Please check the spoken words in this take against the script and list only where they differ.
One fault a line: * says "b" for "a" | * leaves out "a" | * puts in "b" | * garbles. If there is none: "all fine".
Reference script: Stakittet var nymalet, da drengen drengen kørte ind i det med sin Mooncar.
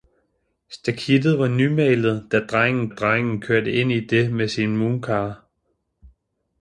all fine